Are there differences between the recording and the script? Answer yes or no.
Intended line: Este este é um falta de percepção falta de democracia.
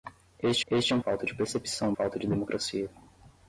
no